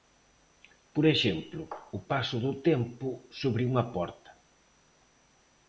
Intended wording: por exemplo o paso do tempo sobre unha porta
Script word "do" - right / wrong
right